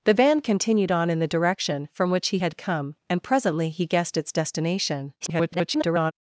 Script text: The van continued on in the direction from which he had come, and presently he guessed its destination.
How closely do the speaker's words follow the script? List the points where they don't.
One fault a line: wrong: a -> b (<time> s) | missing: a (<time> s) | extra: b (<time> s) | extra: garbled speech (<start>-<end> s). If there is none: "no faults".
extra: garbled speech (5.2-6.1 s)